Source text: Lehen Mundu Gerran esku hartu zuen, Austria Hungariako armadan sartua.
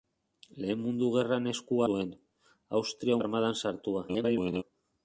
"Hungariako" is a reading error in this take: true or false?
true